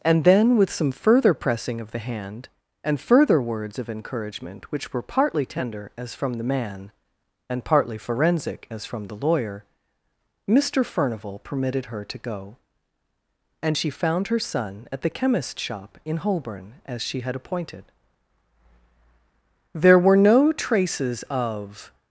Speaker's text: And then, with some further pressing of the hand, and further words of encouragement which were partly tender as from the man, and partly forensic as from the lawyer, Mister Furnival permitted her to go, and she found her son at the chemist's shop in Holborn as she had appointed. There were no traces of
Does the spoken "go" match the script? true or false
true